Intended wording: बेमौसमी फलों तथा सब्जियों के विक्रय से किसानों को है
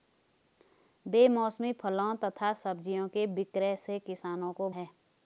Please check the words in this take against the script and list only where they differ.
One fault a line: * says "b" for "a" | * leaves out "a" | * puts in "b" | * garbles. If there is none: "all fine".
all fine